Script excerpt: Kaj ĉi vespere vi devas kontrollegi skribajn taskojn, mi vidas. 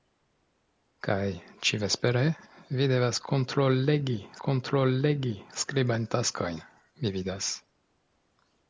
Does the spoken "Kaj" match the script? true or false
true